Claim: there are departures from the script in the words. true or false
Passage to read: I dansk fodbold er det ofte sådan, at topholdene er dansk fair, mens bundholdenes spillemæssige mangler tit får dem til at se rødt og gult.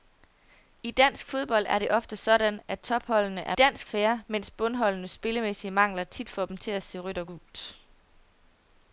false